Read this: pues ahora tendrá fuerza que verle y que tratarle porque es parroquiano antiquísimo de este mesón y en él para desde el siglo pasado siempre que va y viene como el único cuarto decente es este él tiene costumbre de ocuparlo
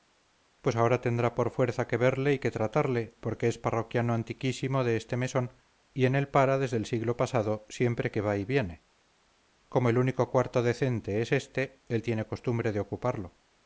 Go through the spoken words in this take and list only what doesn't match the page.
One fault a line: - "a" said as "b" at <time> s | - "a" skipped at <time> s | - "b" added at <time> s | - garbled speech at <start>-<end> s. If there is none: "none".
- "por" added at 1.4 s